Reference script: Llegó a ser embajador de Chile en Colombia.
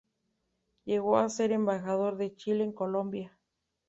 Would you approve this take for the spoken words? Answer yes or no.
yes